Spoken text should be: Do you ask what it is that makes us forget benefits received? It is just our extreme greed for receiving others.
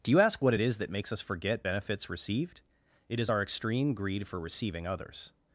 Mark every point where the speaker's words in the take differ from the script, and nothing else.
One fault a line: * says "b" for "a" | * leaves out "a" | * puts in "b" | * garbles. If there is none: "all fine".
* leaves out "just"